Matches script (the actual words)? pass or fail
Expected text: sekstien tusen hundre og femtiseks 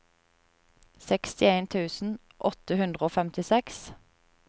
fail